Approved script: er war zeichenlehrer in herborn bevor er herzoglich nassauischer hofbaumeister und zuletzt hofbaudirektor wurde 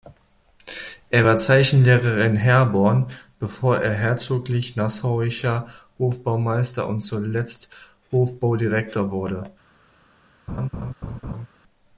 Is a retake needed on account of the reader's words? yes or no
no